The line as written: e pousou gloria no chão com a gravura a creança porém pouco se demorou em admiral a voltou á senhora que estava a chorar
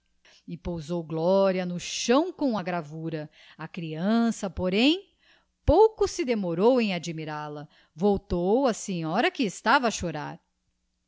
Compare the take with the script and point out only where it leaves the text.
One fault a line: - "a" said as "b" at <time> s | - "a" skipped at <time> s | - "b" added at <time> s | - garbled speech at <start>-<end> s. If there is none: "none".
none